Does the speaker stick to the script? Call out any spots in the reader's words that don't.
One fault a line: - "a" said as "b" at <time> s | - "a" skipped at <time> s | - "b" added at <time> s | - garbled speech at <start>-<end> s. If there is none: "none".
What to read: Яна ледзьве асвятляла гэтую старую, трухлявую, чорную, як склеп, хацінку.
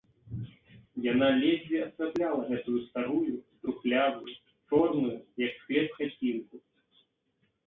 none